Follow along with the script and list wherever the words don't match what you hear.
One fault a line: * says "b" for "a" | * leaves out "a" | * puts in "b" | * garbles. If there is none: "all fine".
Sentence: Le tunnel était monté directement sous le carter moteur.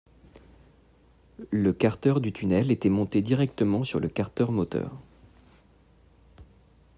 * puts in "carter du"
* says "sur" for "sous"